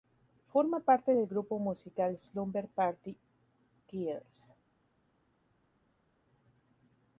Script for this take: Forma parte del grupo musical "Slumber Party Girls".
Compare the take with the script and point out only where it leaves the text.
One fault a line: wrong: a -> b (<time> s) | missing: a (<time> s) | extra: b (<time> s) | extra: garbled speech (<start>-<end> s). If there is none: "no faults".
no faults